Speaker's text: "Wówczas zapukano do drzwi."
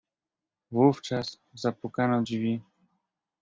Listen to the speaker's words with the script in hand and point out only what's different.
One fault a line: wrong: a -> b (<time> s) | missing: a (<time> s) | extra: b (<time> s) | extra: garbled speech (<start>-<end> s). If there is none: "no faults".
missing: do (2.2 s)